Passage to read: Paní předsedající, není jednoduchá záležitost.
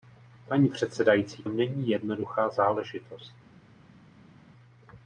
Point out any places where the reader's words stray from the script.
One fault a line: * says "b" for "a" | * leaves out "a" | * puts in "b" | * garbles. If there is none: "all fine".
all fine